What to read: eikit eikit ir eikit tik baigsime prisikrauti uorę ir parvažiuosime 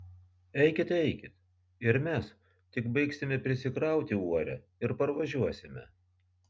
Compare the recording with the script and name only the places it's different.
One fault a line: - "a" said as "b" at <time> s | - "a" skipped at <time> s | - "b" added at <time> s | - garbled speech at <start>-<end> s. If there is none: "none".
- "eikit" said as "mes" at 2.1 s